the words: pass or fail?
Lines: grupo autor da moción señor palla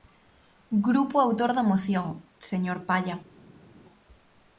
pass